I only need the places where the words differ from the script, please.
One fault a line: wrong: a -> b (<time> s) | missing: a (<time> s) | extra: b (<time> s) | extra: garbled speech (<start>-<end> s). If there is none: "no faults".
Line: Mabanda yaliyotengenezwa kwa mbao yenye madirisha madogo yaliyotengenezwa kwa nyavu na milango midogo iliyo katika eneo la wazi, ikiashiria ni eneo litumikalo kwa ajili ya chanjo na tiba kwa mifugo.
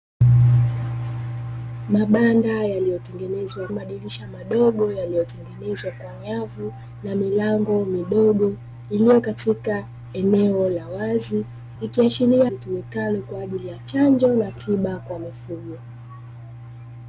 missing: kwa mbao yenye (3.7 s)
missing: ni eneo (12.5 s)